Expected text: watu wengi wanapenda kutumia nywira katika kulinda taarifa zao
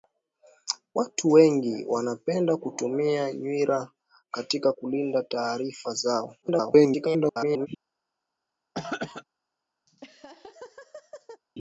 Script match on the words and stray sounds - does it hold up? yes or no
no